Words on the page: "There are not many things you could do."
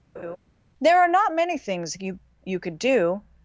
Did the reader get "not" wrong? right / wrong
right